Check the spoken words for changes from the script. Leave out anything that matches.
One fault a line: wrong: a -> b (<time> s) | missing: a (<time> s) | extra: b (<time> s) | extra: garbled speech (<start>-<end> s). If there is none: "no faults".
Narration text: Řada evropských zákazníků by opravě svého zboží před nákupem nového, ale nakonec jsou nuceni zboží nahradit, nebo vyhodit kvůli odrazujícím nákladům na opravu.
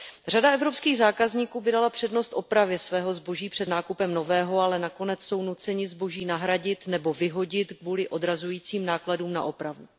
extra: dala přednost (1.7 s)